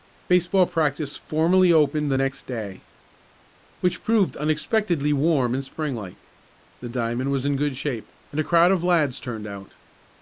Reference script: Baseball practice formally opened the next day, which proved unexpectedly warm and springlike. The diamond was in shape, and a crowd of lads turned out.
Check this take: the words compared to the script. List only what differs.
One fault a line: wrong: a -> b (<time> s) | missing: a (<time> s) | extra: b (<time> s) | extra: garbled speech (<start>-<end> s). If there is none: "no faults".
extra: good (7.5 s)